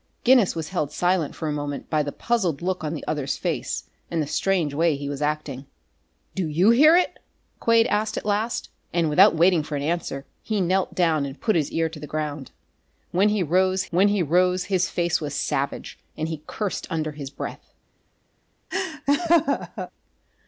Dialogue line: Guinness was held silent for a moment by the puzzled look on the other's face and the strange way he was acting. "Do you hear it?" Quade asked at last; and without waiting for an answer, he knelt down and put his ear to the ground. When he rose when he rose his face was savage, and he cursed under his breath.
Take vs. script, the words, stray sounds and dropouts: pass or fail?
fail